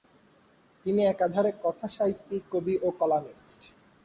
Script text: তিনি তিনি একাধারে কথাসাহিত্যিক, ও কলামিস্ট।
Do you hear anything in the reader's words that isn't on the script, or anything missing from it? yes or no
yes